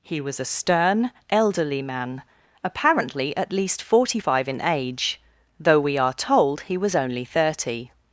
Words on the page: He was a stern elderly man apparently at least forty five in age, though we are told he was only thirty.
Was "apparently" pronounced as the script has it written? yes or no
yes